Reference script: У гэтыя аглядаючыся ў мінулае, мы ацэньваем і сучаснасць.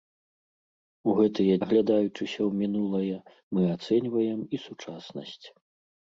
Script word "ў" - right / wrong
right